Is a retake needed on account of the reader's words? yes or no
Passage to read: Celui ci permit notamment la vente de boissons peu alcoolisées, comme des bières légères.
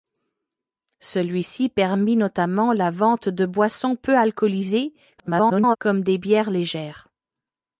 yes